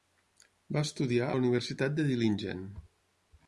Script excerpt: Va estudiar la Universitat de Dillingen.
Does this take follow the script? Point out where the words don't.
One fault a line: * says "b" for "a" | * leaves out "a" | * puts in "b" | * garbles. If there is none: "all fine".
all fine